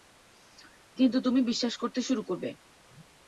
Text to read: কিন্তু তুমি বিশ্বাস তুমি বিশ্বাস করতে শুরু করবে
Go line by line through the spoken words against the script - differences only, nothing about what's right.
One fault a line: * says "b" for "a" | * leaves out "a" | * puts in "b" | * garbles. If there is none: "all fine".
* leaves out "তুমি বিশ্বাস"